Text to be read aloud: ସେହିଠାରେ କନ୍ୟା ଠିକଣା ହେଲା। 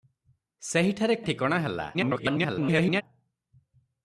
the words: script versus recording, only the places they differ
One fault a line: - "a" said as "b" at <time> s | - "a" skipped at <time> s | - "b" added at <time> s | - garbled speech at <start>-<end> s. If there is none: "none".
- "କନ୍ୟା" skipped at 1.1 s
- garbled speech at 1.9-3.0 s